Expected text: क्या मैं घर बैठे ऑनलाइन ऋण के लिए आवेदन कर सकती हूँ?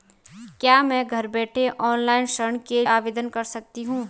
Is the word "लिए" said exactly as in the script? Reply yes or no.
no